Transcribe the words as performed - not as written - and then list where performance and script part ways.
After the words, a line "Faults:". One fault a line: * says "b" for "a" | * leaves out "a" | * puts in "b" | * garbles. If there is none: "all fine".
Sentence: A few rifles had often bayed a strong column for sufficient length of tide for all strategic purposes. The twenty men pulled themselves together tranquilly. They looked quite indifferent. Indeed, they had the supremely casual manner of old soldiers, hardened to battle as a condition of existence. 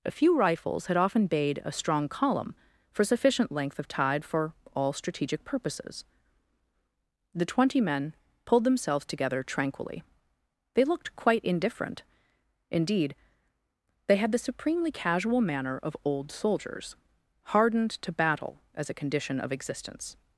A few rifles had often bayed a strong column for sufficient length of tide for all strategic purposes. The twenty men pulled themselves together tranquilly. They looked quite indifferent. Indeed, they had the supremely casual manner of old soldiers, hardened to battle as a condition of existence.
Faults:
all fine